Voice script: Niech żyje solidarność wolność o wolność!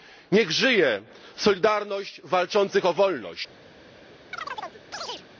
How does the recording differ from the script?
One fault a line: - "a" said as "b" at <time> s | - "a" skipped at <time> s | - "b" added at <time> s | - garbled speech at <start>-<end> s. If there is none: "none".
- "wolność" said as "walczących" at 2.2 s